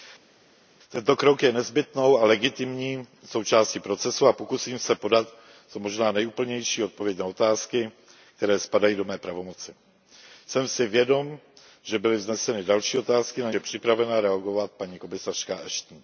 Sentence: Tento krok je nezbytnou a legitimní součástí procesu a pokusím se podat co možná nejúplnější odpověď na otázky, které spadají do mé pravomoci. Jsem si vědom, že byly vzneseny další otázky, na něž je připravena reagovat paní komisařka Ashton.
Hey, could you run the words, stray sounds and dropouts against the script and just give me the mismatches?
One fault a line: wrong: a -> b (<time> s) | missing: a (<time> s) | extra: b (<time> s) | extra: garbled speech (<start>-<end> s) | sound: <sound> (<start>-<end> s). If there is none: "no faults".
missing: něž (13.5 s)